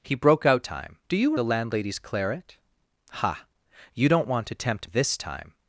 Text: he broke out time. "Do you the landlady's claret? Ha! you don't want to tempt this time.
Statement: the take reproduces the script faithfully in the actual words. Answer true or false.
true